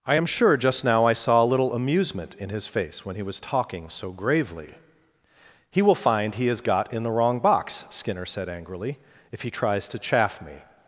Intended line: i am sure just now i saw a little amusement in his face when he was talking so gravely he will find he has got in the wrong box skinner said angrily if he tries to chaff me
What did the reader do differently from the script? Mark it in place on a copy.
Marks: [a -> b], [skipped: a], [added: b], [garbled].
i am sure just now i saw a little amusement in his face when he was talking so gravely he will find he has got in the wrong box skinner said angrily if he tries to chaff me